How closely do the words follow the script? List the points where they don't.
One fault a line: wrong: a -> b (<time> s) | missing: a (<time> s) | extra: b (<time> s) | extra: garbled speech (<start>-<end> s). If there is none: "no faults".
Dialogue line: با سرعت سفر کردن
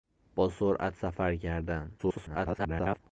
extra: garbled speech (2.0-3.0 s)